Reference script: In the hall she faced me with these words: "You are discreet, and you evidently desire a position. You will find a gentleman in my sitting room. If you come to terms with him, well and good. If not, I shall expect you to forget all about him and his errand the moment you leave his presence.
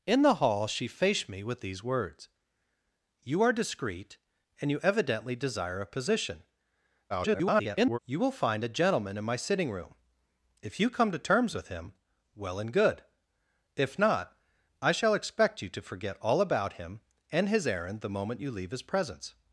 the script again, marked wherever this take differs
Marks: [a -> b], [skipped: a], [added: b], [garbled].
In the hall she faced me with these words: "You are discreet, and you evidently desire a position. [garbled] You will find a gentleman in my sitting room. If you come to terms with him, well and good. If not, I shall expect you to forget all about him and his errand the moment you leave his presence.